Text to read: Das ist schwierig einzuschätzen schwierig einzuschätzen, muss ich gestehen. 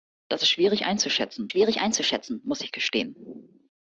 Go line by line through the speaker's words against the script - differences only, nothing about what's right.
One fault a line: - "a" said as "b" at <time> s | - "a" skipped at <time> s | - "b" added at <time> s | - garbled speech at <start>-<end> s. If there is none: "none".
none